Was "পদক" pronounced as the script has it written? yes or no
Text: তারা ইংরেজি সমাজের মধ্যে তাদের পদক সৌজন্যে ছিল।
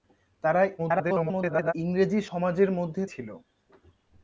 no